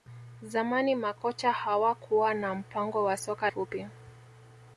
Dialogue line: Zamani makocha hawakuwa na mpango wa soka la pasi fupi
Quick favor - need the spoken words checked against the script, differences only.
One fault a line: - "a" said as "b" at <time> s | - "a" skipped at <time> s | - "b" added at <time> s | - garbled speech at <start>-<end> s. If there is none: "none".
- "la pasi" skipped at 3.5 s